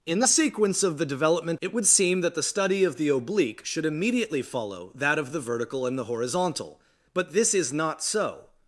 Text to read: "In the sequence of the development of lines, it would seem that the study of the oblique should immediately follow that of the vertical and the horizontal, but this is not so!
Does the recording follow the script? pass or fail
fail